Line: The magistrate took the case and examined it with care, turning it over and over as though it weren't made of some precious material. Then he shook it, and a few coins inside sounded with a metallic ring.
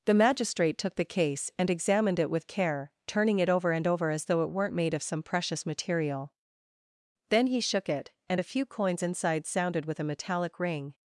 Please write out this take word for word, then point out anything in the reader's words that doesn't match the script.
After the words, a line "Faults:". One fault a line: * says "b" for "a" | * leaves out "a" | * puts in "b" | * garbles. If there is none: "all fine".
The magistrate took the case and examined it with care, turning it over and over as though it weren't made of some precious material. Then he shook it, and a few coins inside sounded with a metallic ring.
Faults:
all fine